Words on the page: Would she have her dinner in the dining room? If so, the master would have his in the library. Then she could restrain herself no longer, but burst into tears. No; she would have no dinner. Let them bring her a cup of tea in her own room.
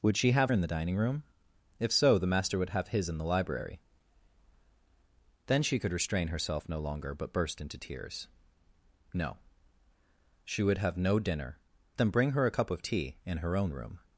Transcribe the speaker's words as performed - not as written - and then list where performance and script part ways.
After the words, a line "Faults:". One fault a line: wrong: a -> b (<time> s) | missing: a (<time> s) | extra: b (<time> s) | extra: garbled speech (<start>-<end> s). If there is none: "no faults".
Would she have in the dining room? If so, the master would have his in the library. Then she could restrain herself no longer, but burst into tears. No; she would have no dinner. Them bring her a cup of tea in her own room.
Faults:
missing: her dinner (0.5 s)
missing: Let (11.6 s)